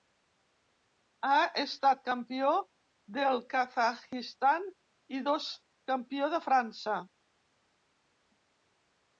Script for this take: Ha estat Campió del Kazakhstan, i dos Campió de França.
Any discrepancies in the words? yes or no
no